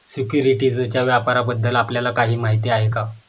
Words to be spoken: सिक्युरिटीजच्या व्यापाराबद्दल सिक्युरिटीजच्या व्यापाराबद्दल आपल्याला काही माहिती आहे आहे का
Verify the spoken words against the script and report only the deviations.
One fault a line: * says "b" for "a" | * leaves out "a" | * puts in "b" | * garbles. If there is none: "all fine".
* leaves out "सिक्युरिटीजच्या व्यापाराबद्दल"
* leaves out "आहे"